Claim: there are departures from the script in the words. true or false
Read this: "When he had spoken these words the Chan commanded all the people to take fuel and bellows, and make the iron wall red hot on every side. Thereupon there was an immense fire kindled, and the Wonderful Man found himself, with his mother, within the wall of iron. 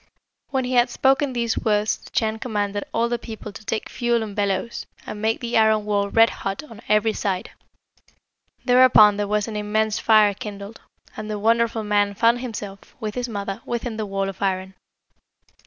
false